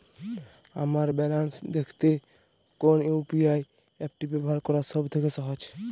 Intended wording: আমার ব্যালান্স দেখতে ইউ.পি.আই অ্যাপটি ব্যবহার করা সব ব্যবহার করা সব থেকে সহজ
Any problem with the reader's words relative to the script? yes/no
yes